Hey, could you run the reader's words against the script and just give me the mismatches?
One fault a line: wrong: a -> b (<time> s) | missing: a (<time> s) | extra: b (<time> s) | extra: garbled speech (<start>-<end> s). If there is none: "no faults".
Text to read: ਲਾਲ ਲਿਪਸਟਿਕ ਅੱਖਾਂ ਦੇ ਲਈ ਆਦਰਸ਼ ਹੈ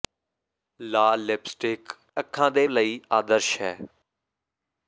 no faults